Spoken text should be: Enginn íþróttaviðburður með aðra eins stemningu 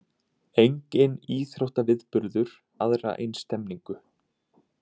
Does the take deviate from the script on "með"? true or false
true